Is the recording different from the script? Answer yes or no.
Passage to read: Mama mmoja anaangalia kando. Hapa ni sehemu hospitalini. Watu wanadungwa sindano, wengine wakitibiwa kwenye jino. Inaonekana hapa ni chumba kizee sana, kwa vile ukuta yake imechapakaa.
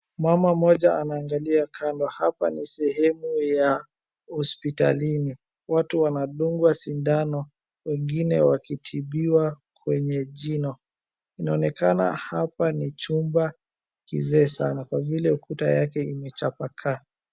yes